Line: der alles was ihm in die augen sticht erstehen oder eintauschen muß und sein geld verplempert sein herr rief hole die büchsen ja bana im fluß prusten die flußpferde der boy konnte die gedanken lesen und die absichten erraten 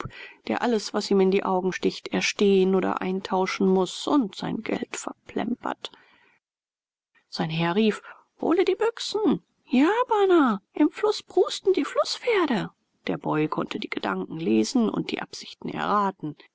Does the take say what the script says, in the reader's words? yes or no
yes